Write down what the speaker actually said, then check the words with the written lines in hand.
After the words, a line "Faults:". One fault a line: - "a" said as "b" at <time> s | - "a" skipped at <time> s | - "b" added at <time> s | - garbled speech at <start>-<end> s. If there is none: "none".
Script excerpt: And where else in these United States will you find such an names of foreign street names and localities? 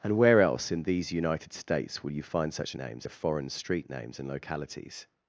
And where else in these United States will you find such an names of foreign street names and localities?
Faults:
none